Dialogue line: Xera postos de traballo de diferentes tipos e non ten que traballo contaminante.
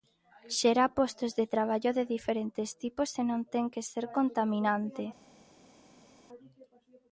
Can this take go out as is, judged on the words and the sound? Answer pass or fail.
fail